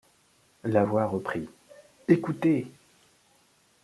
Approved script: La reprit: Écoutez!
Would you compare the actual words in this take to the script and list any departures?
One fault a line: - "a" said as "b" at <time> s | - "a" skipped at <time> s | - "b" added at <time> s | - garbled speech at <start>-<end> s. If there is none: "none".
- "voix" added at 0.8 s